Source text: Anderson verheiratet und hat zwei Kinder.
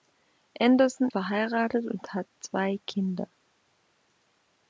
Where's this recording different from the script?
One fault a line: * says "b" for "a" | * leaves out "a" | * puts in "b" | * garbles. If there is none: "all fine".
all fine